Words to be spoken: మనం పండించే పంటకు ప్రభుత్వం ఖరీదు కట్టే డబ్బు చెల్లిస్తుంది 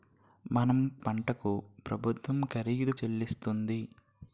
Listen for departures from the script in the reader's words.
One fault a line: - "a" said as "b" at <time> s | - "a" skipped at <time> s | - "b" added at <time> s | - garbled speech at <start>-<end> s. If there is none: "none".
- "పండించే" skipped at 0.8 s
- "కట్టే డబ్బు" skipped at 2.9 s